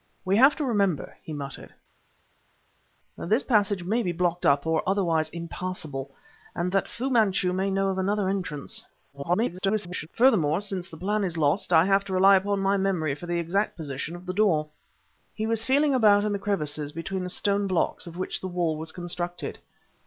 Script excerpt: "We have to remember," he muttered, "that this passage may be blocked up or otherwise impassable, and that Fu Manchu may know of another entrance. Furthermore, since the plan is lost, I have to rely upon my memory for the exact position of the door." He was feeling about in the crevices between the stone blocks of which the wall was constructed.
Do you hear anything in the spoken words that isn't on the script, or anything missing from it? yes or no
yes